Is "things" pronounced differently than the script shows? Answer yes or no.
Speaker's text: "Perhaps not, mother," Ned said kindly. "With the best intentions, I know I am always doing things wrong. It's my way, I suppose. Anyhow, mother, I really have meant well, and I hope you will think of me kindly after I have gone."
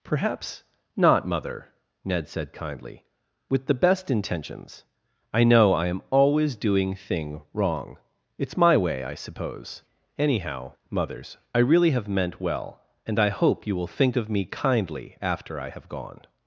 yes